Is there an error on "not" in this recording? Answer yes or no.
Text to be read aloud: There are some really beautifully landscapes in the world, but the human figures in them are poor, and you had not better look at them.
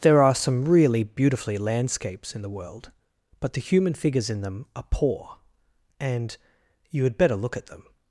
yes